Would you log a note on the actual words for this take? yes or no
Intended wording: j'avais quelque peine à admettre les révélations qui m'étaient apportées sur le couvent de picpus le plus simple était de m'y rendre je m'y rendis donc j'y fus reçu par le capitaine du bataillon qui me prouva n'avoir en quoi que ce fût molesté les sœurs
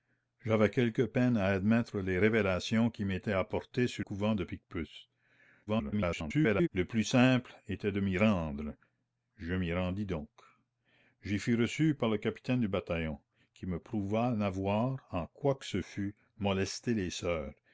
yes